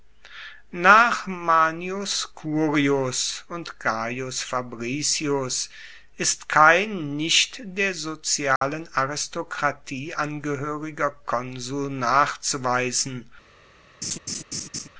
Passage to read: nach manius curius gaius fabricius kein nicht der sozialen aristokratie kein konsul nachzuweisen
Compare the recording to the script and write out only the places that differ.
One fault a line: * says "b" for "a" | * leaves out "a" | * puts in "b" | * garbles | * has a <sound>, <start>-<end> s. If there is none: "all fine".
* puts in "und"
* puts in "ist"
* has a dropout, 8.6-8.6 s
* says "angehoeriger" for "kein"
* has a laugh, 14.0-14.9 s